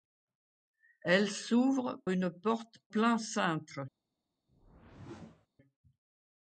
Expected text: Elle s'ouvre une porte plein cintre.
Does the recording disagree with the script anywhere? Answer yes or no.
no